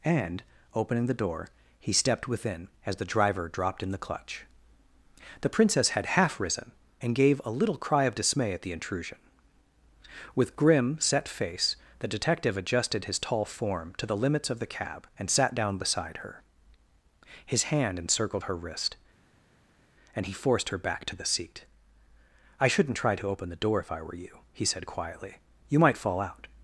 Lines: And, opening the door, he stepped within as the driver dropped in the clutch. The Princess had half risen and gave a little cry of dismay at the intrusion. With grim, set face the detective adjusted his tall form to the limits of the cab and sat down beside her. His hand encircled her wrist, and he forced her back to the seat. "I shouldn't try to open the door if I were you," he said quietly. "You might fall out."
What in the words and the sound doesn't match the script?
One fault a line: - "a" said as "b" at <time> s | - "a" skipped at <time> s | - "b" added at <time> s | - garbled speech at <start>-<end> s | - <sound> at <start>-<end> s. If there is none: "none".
none